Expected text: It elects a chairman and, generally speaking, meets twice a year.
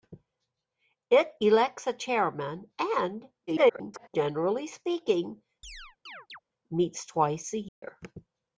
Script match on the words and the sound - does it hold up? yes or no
no